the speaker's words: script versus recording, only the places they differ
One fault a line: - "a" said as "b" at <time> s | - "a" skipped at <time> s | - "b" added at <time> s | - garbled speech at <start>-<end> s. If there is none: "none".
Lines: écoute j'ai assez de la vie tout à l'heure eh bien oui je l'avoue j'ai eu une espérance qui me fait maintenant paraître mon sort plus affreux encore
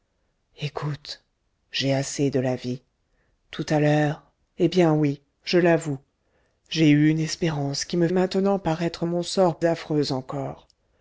- "fait" skipped at 8.1 s
- "plus" skipped at 9.6 s